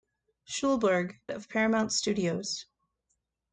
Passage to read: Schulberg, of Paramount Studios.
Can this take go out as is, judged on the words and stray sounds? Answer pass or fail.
pass